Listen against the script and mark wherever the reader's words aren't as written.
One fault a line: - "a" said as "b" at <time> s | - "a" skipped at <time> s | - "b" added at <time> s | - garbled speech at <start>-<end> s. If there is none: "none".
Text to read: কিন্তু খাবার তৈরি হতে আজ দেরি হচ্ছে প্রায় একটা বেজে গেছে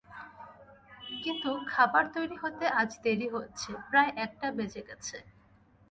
none